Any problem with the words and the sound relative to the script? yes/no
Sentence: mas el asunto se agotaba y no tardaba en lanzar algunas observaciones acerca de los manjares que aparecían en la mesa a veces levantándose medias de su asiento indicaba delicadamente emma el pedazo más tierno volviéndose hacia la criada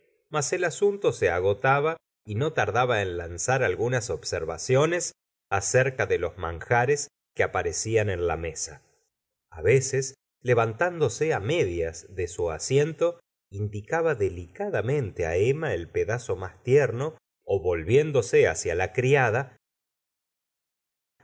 no